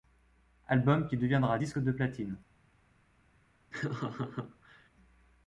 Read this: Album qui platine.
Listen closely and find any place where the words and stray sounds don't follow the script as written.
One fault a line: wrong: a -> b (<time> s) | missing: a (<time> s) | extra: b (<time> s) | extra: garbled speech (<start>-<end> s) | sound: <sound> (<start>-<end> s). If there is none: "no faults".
extra: deviendra disque de (1.1 s)
sound: laugh (3.7-4.9 s)